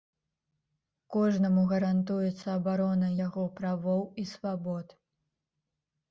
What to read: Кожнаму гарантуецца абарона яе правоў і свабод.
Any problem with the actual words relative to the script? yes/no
yes